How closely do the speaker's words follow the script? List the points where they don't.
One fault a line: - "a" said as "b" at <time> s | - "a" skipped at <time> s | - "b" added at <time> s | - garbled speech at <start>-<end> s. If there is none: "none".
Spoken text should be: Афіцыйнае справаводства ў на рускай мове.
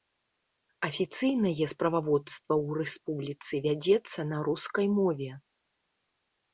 - "рэспубліцы вядзецца" added at 2.8 s